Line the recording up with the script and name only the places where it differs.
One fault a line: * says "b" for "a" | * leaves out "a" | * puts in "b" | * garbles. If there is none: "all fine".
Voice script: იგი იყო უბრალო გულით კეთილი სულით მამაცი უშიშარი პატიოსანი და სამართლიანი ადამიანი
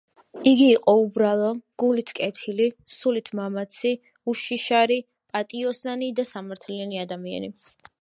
all fine